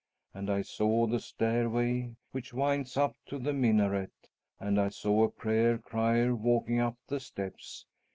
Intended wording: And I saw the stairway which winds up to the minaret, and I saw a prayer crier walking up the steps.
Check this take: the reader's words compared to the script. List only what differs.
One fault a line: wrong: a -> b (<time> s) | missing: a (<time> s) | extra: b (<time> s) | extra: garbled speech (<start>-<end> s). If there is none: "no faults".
no faults